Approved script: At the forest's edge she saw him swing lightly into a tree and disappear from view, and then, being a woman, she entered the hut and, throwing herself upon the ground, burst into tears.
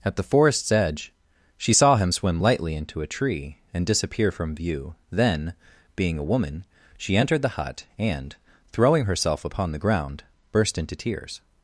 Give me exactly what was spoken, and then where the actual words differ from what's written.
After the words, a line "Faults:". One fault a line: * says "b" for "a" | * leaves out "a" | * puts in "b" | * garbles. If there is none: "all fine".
At the forest's edge she saw him swim lightly into a tree and disappear from view, then, being a woman, she entered the hut and, throwing herself upon the ground, burst into tears.
Faults:
* says "swim" for "swing"
* leaves out "and"